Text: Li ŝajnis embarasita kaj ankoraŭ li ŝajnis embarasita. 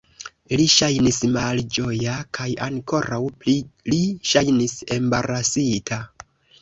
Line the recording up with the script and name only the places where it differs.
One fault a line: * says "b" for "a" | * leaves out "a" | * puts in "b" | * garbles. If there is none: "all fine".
* says "malĝoja" for "embarasita"
* puts in "pli"